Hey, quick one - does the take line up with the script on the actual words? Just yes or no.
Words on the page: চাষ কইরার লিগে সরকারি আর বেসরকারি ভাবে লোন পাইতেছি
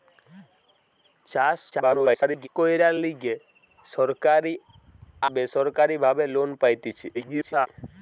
no